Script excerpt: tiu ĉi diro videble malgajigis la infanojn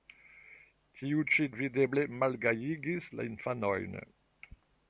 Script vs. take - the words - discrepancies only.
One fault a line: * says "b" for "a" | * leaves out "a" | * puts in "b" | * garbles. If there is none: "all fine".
* leaves out "diro"